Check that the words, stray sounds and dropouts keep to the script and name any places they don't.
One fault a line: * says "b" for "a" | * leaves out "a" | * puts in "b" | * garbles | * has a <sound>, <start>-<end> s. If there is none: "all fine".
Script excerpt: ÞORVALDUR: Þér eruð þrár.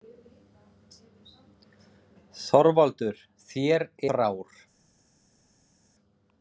* leaves out "eruð"